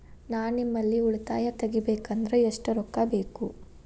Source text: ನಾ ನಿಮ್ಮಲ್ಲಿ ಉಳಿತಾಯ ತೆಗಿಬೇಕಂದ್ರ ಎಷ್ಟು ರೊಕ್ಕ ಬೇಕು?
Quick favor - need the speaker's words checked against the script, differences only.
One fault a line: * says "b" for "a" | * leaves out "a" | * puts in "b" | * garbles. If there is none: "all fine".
all fine